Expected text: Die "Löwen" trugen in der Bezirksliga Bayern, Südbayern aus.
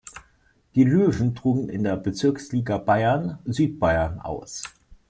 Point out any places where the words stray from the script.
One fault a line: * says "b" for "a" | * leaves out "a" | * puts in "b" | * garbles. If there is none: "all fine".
all fine